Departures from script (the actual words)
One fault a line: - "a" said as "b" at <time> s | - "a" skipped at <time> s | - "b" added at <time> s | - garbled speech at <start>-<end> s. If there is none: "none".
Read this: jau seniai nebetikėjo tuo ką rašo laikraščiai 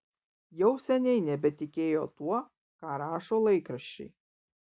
none